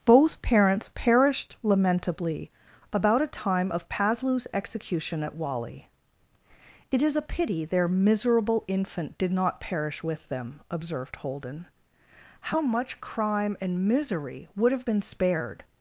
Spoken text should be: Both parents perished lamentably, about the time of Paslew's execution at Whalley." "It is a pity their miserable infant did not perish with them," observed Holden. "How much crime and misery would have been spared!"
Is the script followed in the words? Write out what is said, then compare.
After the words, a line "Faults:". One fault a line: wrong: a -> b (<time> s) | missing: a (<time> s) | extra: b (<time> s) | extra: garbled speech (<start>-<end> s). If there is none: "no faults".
Both parents perished lamentably, about a time of Paslew's execution at Whalley." "It is a pity their miserable infant did not perish with them," observed Holden. "How much crime and misery would have been spared!"
Faults:
wrong: the -> a (3.2 s)